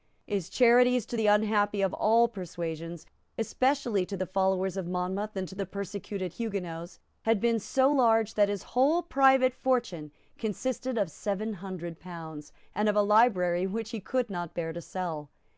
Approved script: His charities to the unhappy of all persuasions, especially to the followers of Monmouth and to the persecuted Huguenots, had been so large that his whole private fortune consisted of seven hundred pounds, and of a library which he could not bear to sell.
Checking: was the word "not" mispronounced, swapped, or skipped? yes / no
no